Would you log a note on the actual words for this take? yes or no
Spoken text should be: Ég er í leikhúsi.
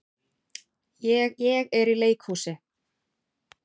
yes